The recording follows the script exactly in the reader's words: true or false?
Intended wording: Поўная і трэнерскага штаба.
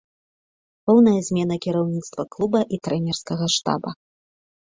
false